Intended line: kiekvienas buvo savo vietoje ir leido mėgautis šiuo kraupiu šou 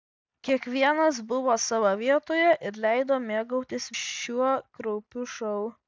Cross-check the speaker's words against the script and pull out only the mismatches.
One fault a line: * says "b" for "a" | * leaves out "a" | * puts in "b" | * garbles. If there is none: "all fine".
all fine